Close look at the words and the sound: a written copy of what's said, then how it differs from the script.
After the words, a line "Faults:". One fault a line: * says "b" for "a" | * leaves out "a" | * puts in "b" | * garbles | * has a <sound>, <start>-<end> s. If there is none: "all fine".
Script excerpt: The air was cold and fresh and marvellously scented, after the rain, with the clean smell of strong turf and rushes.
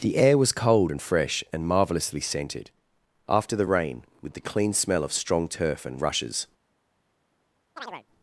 The air was cold and fresh and marvellously scented, after the rain, with the clean smell of strong turf and rushes.
Faults:
* has a chirp, 7.8-8.1 s